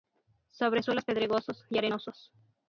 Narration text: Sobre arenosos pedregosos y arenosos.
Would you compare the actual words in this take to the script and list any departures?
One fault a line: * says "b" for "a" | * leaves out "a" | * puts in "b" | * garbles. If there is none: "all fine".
* says "suelos" for "arenosos"